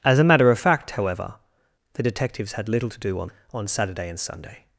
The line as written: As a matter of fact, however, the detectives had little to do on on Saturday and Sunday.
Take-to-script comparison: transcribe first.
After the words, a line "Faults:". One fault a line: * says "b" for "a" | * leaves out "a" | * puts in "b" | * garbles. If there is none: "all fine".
As a matter of fact, however, the detectives had little to do on on Saturday and Sunday.
Faults:
all fine